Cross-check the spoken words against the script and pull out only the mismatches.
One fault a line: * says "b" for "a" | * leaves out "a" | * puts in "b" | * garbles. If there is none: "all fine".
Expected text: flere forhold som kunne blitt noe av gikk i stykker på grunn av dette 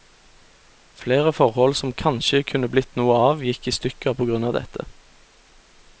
* puts in "kanskje"